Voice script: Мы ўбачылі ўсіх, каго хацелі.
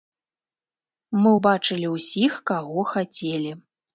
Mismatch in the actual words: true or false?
false